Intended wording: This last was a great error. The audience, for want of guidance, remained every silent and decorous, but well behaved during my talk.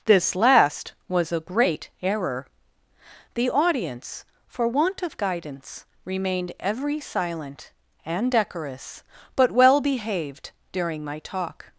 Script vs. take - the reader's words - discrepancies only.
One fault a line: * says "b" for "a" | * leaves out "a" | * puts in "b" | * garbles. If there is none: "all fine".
all fine